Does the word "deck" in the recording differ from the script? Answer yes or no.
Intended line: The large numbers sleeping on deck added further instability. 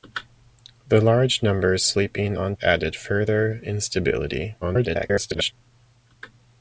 yes